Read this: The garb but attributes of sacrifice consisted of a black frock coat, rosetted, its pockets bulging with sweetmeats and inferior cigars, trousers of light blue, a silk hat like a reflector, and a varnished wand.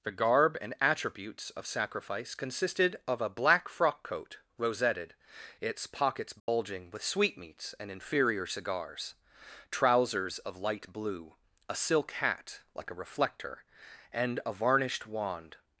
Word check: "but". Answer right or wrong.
wrong